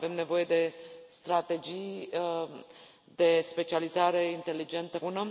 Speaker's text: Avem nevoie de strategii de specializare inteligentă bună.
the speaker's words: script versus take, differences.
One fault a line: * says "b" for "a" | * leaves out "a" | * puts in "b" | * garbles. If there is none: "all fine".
all fine